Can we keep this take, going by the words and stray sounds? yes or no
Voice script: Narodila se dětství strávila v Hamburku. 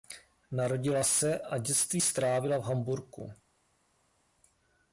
no